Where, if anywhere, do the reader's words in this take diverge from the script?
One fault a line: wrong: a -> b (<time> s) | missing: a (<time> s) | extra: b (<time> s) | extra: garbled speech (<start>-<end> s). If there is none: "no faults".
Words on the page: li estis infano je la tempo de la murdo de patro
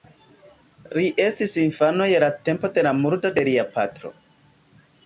extra: lia (3.5 s)